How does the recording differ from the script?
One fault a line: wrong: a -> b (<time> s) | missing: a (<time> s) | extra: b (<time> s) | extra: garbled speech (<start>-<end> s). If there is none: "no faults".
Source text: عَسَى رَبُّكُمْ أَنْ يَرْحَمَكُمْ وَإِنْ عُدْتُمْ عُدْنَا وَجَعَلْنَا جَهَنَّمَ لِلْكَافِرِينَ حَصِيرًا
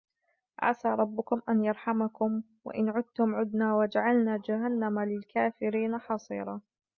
no faults